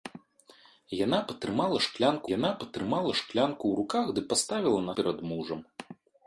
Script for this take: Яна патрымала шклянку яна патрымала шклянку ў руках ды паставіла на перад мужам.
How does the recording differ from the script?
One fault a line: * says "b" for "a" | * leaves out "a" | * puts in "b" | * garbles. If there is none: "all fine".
all fine